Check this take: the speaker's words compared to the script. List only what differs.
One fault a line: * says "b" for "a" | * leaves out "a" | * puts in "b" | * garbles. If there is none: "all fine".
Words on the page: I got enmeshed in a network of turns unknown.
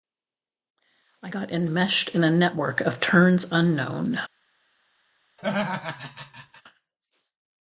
all fine